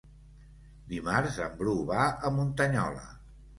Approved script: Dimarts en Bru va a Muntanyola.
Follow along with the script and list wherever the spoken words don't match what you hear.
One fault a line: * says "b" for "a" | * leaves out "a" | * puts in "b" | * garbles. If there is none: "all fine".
all fine